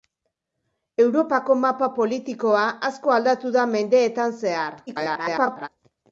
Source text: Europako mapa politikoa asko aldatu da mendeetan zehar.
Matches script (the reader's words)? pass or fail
fail